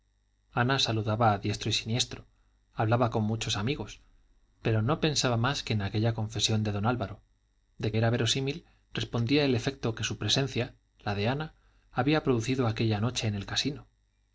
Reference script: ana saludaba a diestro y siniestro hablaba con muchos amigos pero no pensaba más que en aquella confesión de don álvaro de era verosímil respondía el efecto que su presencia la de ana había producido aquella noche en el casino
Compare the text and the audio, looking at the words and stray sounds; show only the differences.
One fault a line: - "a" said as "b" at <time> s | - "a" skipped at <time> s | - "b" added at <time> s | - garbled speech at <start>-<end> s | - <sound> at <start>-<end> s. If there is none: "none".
none